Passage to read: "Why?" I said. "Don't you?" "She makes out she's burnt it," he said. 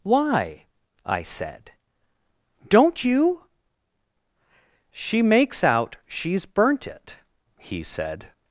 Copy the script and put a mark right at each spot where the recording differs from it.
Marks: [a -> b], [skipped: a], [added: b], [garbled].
"Why?" I said. "Don't you?" "She makes out she's burnt it," he said.